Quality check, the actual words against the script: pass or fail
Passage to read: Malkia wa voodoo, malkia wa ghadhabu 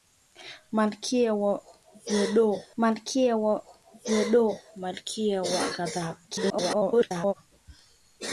fail